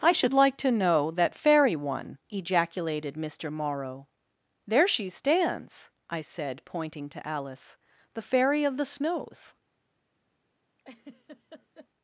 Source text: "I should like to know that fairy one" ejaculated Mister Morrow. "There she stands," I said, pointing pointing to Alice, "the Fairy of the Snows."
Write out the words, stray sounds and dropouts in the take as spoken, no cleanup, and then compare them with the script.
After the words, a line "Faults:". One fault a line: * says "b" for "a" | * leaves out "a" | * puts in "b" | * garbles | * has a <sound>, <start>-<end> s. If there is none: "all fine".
"I should like to know that fairy one" ejaculated Mister Morrow. "There she stands," I said, pointing to Alice, "the Fairy of the Snows."
Faults:
* leaves out "pointing"
* has a laugh, 10.8-11.9 s